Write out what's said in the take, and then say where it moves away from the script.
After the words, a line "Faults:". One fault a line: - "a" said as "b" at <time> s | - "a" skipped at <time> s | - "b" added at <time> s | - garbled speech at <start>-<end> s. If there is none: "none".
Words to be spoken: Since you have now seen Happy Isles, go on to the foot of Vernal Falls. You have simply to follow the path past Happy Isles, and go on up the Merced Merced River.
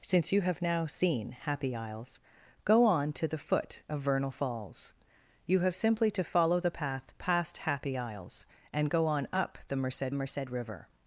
Since you have now seen Happy Isles, go on to the foot of Vernal Falls. You have simply to follow the path past Happy Isles, and go on up the Merced Merced River.
Faults:
none